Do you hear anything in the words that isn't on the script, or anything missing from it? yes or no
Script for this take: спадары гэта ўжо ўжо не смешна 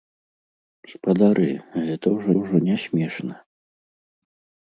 no